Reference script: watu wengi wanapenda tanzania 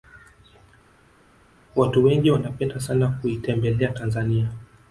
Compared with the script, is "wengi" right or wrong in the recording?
right